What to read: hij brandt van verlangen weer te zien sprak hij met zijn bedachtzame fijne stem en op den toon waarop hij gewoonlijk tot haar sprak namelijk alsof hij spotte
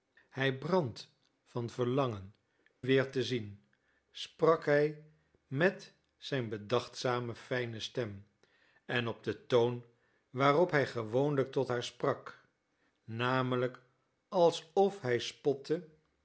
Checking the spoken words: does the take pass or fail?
pass